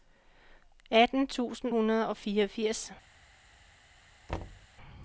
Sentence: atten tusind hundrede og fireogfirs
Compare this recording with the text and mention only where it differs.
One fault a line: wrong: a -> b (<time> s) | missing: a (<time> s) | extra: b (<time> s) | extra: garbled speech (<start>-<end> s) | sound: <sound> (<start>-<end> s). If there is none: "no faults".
sound: thud (4.3-4.7 s)